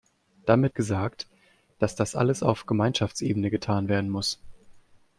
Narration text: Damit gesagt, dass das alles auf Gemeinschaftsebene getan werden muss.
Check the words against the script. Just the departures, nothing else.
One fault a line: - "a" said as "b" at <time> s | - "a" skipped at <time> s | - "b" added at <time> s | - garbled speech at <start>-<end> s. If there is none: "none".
none